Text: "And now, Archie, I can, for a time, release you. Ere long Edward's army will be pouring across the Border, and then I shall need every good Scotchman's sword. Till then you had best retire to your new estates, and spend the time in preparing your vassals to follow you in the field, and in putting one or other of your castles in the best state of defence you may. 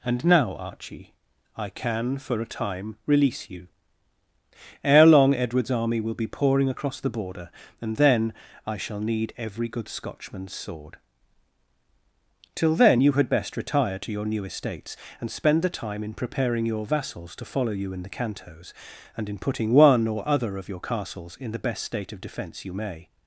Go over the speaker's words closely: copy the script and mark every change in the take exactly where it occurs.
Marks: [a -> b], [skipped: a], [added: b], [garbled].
"And now, Archie, I can, for a time, release you. Ere long Edward's army will be pouring across the Border, and then I shall need every good Scotchman's sword. Till then you had best retire to your new estates, and spend the time in preparing your vassals to follow you in the [field, -> cantos] and in putting one or other of your castles in the best state of defence you may.